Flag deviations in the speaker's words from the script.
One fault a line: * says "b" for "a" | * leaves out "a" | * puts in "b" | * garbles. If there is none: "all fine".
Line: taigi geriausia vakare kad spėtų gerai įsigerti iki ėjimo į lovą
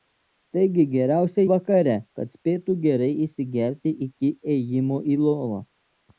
all fine